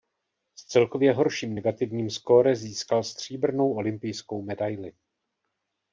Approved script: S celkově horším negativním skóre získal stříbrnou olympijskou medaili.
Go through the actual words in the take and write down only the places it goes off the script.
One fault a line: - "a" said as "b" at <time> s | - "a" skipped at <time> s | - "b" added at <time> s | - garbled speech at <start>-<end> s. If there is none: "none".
none